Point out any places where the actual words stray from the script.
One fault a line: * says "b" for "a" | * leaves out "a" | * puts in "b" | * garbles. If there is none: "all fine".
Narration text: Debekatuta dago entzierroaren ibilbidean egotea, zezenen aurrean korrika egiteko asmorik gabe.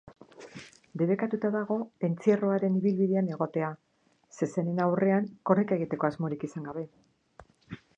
* puts in "izan"